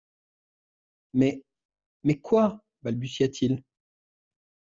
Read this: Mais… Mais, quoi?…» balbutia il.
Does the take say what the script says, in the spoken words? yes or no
no